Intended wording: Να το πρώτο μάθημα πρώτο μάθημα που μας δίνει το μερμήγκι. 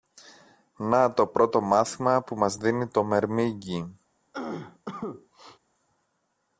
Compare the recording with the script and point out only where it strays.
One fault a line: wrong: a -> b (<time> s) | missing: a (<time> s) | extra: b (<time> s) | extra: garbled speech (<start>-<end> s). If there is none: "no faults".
missing: πρώτο μάθημα (2.2 s)